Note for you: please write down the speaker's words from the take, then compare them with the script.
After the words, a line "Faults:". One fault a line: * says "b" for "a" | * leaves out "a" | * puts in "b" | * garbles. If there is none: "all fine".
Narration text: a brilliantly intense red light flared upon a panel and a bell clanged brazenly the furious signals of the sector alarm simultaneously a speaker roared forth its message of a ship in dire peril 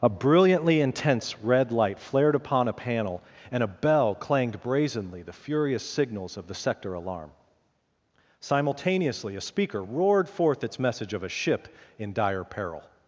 a brilliantly intense red light flared upon a panel and a bell clanged brazenly the furious signals of the sector alarm simultaneously a speaker roared forth its message of a ship in dire peril
Faults:
all fine